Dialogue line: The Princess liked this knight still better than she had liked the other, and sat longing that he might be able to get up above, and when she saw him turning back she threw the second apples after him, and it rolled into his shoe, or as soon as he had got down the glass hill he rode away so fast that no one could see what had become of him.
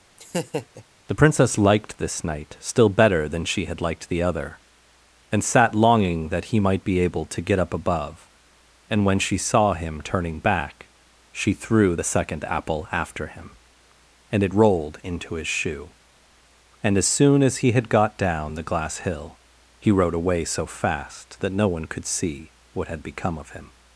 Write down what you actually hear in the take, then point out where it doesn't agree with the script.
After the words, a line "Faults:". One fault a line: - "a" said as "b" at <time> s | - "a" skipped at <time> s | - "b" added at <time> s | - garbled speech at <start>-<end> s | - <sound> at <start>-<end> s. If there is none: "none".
The Princess liked this knight still better than she had liked the other, and sat longing that he might be able to get up above, and when she saw him turning back she threw the second apple after him, and it rolled into his shoe, and as soon as he had got down the glass hill he rode away so fast that no one could see what had become of him.
Faults:
- laugh at 0.2-0.8 s
- "apples" said as "apple" at 12.4 s
- "or" said as "and" at 16.8 s